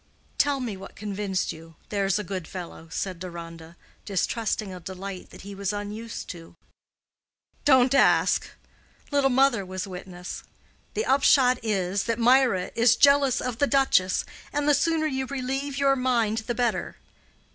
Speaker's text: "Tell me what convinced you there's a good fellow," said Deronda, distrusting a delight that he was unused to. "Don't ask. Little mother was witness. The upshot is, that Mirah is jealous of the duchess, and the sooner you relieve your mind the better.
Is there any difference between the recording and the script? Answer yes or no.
no